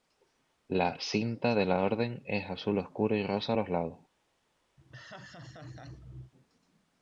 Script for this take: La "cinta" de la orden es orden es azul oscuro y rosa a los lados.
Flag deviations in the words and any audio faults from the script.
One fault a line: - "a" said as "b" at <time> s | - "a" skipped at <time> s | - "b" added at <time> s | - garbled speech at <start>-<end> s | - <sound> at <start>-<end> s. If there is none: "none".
- "orden es" skipped at 2.5 s
- laugh at 4.8-6.3 s